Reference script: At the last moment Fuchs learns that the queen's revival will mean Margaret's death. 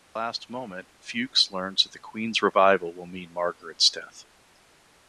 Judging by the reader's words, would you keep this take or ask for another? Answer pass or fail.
pass